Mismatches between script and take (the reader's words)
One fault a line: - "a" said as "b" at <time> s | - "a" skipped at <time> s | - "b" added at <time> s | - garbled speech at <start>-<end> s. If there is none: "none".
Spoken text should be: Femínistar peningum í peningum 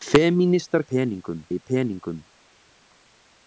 none